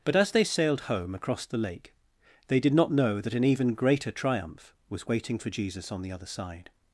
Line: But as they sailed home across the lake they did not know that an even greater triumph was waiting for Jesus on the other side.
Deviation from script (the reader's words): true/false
false